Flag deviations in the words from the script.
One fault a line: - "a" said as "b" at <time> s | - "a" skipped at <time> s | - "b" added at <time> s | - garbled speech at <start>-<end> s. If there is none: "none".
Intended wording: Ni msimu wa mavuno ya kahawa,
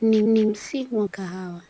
- "ni" added at 0.2 s
- "mavuno ya" skipped at 1.1 s